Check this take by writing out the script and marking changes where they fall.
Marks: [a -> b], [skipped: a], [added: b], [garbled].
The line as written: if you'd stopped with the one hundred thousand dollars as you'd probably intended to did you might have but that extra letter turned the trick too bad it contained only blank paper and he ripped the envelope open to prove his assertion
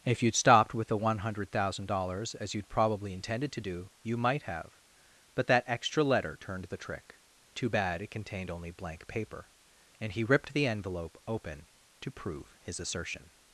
if you'd stopped with the one hundred thousand dollars as you'd probably intended to [did -> do] you might have but that extra letter turned the trick too bad it contained only blank paper and he ripped the envelope open to prove his assertion